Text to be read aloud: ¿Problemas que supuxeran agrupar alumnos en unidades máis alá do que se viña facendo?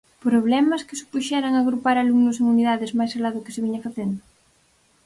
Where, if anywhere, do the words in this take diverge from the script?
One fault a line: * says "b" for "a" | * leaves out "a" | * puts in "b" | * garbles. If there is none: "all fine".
all fine